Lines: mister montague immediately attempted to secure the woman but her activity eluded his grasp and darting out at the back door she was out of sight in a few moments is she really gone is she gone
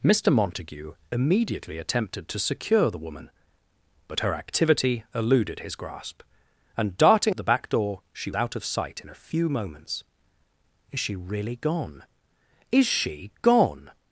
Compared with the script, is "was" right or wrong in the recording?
wrong